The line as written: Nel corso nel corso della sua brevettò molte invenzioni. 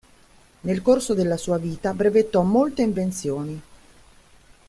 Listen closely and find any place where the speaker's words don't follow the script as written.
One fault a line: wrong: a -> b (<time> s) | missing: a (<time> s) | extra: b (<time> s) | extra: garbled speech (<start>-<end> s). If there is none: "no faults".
missing: nel corso (1.1 s)
extra: vita (1.6 s)